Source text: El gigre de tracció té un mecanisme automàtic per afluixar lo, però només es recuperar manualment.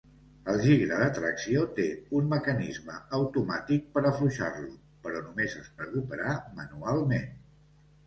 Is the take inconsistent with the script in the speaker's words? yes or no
no